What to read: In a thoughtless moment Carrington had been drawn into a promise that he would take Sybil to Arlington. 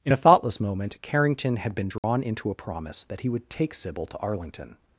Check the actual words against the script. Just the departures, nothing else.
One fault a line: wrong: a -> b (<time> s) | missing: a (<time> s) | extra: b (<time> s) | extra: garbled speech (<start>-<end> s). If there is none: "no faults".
no faults